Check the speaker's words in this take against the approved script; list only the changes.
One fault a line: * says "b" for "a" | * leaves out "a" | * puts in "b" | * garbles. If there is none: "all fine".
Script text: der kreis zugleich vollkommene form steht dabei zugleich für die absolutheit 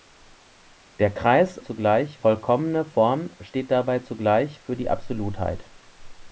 all fine